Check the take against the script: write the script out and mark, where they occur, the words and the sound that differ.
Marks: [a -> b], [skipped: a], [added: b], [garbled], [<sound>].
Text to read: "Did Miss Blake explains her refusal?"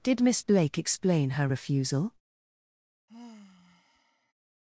"Did Miss Blake [explains -> explain] her refusal?" [sigh]